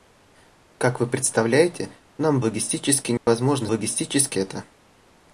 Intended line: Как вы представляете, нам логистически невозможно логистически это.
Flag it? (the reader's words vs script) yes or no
no